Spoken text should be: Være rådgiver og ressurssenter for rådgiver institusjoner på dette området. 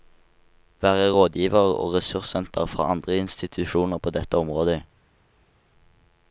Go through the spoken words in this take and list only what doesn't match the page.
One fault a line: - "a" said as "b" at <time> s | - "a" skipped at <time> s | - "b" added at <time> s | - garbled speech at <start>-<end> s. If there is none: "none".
- "rådgiver" said as "andre" at 2.8 s